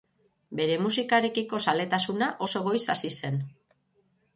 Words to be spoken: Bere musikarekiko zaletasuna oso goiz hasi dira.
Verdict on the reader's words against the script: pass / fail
fail